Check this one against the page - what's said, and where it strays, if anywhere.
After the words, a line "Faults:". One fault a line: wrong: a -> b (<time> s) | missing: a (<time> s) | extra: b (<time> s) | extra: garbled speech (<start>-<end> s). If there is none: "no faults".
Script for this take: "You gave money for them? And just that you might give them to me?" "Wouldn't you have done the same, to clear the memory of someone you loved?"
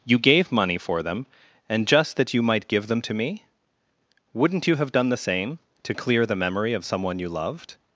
"You gave money for them? And just that you might give them to me?" "Wouldn't you have done the same, to clear the memory of someone you loved?"
Faults:
no faults